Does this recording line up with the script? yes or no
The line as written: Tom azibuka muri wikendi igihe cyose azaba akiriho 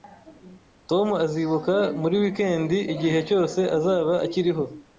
yes